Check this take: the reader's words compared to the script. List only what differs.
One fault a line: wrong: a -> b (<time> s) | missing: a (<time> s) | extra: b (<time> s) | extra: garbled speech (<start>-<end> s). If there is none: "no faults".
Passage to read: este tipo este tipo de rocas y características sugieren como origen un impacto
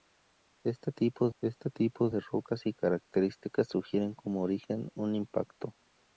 no faults